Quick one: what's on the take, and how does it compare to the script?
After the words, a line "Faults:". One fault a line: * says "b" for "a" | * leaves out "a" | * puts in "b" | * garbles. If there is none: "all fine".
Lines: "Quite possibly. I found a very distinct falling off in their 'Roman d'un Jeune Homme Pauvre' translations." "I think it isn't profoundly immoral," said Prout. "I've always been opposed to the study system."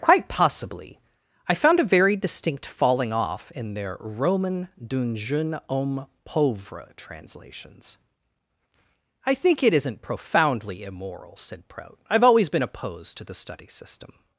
"Quite possibly. I found a very distinct falling off in their 'Roman d'un Jeune Homme Pauvre' translations." "I think it isn't profoundly immoral," said Prout. "I've always been opposed to the study system."
Faults:
all fine